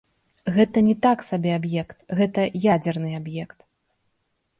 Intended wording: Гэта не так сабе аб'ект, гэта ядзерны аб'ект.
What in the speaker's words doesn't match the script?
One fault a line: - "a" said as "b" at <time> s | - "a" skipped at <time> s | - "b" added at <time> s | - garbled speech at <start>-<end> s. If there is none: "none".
none